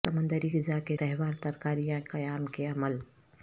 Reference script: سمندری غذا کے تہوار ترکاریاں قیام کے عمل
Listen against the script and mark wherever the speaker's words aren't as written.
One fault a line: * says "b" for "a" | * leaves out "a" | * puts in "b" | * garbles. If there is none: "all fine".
all fine